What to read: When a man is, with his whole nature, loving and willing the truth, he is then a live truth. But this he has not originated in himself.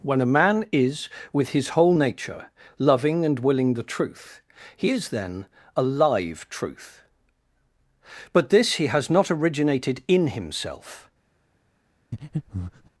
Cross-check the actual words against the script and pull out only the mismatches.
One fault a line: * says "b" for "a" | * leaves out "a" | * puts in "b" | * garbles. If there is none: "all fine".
all fine